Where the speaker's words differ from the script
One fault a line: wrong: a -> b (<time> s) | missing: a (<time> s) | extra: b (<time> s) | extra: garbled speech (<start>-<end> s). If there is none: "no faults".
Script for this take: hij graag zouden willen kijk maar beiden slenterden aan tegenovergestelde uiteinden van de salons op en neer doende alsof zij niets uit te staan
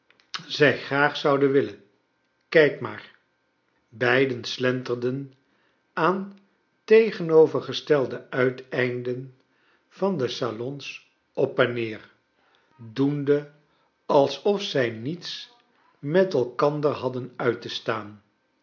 wrong: hij -> zij (0.5 s)
extra: met elkander hadden (16.0 s)